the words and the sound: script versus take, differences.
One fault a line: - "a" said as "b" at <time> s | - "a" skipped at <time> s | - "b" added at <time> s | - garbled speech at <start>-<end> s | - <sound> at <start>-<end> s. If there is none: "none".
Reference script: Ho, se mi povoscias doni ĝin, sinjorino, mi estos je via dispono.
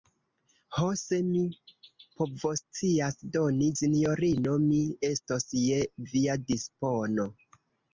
- "ĝin" skipped at 3.7 s